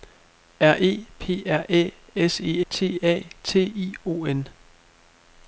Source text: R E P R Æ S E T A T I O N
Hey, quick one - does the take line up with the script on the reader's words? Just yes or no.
yes